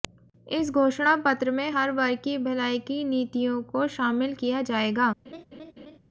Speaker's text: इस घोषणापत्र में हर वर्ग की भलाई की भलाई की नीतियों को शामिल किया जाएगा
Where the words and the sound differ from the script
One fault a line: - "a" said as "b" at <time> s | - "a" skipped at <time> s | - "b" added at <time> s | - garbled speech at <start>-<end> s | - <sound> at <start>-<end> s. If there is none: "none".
- "भलाई की" skipped at 3.0 s
- laugh at 5.2-6.0 s